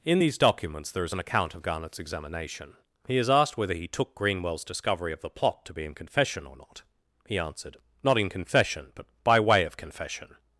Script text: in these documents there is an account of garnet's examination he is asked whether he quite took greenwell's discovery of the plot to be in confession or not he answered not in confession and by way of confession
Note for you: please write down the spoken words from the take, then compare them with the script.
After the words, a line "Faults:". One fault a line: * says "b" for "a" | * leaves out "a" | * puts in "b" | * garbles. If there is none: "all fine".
in these documents there is an account of garnet's examination he is asked whether he took greenwell's discovery of the plot to be in confession or not he answered not in confession but by way of confession
Faults:
* leaves out "quite"
* says "but" for "and"